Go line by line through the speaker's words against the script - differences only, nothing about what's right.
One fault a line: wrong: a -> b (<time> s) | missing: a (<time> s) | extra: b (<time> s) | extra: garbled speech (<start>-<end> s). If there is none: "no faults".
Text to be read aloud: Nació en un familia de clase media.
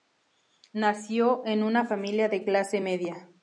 wrong: un -> una (1.6 s)